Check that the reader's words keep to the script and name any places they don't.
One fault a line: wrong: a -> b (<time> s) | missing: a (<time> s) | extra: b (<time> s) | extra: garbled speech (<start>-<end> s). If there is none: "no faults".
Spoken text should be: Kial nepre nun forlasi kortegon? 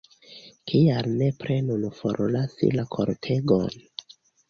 extra: la (2.8 s)